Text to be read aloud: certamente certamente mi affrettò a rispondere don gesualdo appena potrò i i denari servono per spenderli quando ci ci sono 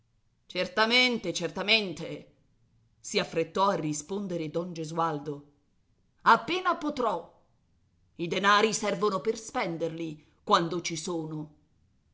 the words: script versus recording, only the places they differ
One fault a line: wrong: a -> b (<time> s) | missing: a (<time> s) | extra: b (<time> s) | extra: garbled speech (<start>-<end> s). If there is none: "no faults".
wrong: mi -> si (3.0 s)
missing: i (8.3 s)
missing: ci (10.9 s)